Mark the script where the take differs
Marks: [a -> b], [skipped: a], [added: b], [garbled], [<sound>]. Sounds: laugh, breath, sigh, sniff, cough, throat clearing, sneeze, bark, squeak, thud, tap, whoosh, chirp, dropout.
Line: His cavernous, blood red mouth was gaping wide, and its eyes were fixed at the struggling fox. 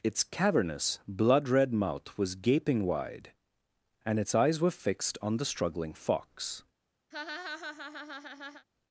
[His -> Its] cavernous, blood red mouth was gaping wide, and its eyes were fixed [at -> on] the struggling fox. [laugh]